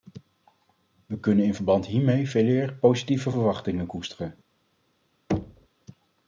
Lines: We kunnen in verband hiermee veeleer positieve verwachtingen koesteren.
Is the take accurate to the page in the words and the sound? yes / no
no